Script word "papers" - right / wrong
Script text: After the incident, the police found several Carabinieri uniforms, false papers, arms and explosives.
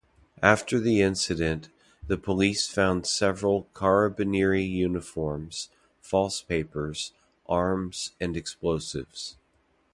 right